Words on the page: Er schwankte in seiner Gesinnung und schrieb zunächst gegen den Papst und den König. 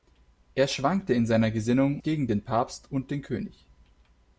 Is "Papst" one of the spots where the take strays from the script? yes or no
no